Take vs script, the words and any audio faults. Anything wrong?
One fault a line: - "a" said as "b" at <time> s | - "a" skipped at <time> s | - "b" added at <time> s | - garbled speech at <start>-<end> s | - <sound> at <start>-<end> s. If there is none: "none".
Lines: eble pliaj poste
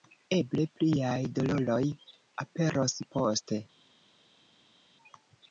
- "doloroj aperos" added at 1.4 s